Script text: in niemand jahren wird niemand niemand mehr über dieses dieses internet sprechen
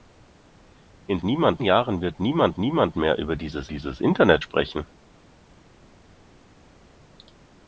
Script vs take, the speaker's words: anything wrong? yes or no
no